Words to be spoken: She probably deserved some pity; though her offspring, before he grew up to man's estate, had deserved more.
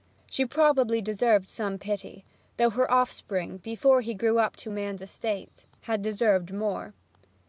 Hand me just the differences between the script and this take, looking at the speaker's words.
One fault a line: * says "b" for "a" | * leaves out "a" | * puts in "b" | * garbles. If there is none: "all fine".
all fine